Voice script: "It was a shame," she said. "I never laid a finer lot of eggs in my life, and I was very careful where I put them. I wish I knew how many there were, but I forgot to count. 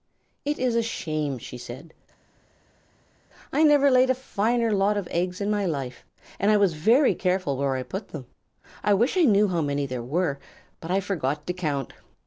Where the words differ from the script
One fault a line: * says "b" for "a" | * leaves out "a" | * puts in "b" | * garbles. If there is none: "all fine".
* says "is" for "was"